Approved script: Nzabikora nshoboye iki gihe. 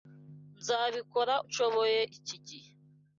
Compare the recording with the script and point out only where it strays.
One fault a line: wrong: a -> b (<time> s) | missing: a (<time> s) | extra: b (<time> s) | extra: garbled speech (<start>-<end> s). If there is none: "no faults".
no faults